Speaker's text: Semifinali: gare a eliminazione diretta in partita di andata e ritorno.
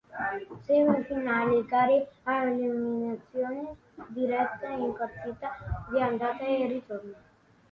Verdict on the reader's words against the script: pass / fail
pass